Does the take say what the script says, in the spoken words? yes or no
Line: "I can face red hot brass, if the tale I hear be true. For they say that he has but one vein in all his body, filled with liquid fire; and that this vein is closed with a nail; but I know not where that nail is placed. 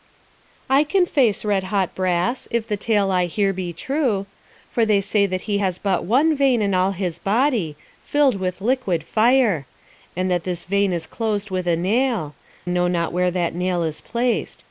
no